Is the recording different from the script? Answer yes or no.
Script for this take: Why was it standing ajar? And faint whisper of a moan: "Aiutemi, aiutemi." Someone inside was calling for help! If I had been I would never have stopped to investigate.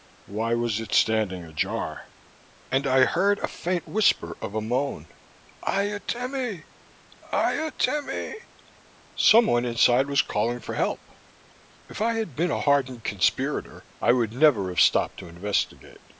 yes